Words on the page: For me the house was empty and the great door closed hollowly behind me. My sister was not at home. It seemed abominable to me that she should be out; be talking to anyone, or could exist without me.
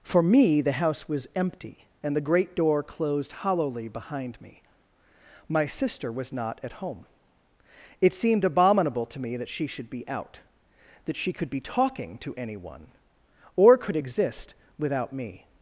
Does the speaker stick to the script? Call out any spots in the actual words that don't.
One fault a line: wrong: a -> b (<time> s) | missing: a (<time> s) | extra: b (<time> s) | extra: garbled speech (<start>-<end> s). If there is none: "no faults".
extra: that she could (11.1 s)